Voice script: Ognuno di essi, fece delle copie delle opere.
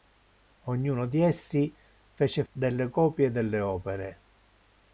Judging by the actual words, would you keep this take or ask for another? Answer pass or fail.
pass